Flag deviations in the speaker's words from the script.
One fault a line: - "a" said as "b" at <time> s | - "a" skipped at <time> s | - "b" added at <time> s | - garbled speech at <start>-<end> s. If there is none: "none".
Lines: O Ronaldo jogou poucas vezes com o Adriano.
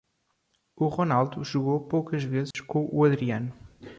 none